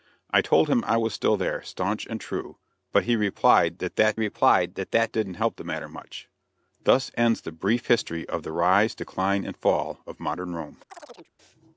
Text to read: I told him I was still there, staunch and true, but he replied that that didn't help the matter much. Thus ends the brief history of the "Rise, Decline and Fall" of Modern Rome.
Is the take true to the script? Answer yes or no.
no